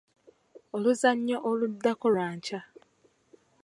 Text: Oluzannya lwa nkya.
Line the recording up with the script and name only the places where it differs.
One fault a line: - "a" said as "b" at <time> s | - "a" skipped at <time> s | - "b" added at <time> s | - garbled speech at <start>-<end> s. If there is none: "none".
- "oluddako" added at 1.5 s